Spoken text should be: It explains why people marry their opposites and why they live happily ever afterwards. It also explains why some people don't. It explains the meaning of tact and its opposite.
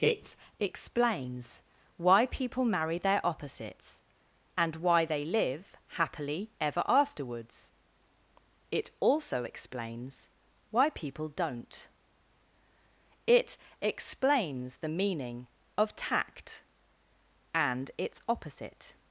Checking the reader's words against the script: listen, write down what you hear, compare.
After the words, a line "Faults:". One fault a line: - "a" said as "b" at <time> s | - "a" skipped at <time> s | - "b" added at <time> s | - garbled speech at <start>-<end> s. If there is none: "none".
It explains why people marry their opposites and why they live happily ever afterwards. It also explains why people don't. It explains the meaning of tact and its opposite.
Faults:
- "some" skipped at 10.9 s